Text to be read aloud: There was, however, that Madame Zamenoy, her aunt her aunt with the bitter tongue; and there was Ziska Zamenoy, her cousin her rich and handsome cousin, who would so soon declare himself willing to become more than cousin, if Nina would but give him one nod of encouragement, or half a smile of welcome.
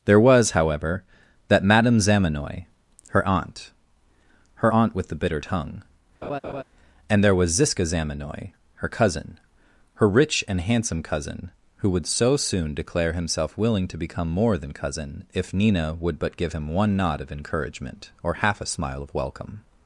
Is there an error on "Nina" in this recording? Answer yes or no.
no